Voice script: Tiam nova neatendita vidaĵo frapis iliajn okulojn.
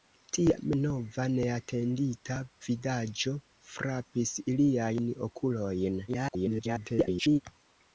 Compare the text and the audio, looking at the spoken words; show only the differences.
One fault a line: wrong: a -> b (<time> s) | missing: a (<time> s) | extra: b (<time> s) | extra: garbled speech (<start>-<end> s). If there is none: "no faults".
extra: garbled speech (6.1-7.4 s)